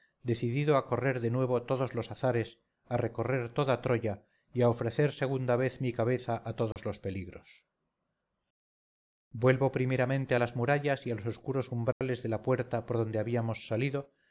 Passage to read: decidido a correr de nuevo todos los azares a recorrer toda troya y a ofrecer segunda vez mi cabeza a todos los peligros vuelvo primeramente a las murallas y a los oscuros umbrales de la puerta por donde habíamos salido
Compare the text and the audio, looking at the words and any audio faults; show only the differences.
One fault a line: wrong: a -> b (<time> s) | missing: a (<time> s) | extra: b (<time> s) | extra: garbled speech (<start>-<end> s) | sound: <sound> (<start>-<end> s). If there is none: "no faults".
sound: dropout (6.7-6.8 s)
sound: dropout (11.9-12.0 s)